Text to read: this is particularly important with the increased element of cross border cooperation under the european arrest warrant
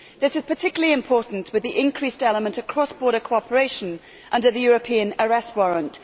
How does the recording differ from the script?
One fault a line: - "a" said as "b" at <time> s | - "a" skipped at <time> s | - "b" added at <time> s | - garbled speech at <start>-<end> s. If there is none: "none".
none